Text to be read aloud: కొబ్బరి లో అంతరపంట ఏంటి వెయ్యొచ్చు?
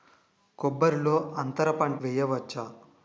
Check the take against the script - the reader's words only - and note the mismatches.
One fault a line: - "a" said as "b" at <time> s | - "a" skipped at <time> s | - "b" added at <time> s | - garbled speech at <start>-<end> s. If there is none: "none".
- "ఏంటి" skipped at 2.0 s